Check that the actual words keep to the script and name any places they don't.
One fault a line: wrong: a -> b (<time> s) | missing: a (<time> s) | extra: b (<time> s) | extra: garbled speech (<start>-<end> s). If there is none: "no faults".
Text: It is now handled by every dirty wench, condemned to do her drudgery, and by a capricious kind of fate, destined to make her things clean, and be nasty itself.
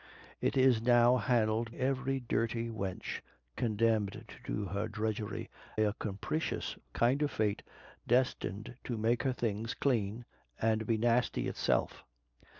missing: by (1.8 s)
missing: and by (5.5 s)